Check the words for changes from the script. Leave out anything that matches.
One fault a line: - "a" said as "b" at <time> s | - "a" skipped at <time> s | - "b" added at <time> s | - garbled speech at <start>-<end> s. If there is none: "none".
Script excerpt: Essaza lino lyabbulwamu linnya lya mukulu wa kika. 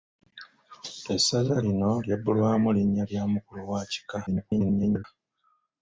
- garbled speech at 4.3-5.0 s